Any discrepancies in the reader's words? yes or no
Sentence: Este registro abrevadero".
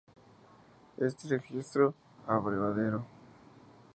no